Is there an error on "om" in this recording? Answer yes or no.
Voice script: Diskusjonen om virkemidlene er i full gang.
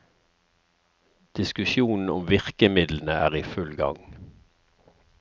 no